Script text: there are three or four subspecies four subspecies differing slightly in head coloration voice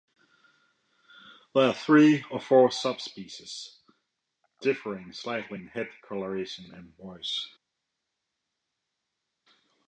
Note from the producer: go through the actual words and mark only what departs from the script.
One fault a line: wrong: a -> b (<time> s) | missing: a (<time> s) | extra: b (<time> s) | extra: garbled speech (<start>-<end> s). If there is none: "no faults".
missing: four subspecies (3.8 s)
extra: and (6.7 s)